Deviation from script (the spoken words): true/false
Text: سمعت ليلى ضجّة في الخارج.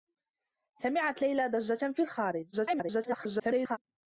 true